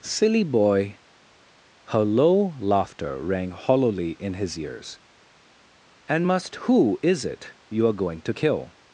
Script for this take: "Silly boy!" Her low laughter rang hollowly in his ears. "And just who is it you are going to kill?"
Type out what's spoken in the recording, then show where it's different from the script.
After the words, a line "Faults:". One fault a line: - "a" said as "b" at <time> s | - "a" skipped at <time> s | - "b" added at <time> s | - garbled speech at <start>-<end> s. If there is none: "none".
"Silly boy!" Her low laughter rang hollowly in his ears. "And must who is it you are going to kill?"
Faults:
- "just" said as "must" at 6.3 s